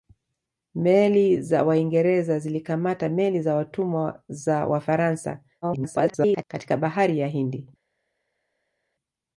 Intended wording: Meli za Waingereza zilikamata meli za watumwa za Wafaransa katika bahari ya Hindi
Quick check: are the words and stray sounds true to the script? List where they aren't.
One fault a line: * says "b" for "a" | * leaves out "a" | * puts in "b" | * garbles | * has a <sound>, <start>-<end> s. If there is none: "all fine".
* garbles